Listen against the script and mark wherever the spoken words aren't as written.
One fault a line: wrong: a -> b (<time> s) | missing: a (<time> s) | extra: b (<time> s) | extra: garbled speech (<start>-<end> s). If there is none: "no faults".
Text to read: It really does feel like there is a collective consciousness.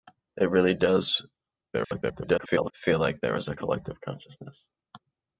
extra: garbled speech (1.7-2.7 s)